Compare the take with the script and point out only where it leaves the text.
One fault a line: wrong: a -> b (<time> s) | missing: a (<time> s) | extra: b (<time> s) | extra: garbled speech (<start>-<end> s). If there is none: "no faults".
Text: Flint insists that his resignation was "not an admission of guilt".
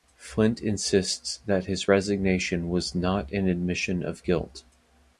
no faults